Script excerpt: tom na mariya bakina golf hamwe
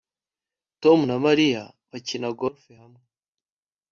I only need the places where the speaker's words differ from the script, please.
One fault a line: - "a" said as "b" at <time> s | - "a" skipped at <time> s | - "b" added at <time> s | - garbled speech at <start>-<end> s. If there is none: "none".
none